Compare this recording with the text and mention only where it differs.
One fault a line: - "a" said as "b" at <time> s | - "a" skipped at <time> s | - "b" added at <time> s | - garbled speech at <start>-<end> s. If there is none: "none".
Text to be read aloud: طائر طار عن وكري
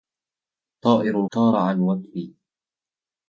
none